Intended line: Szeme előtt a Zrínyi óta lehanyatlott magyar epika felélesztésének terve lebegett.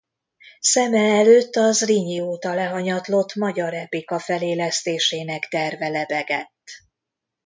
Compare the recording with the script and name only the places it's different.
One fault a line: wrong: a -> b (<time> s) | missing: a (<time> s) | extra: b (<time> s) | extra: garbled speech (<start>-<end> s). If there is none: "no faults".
no faults